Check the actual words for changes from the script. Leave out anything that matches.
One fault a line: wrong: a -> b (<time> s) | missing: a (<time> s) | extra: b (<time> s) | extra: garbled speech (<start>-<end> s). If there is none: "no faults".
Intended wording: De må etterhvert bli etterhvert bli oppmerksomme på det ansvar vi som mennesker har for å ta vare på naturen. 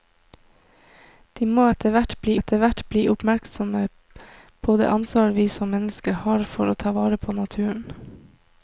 no faults